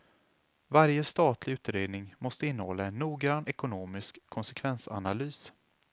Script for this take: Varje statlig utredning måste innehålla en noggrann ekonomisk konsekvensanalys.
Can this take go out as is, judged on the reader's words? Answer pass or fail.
pass